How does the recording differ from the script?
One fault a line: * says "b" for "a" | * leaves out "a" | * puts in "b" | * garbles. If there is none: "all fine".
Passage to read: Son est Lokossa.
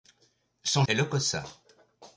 all fine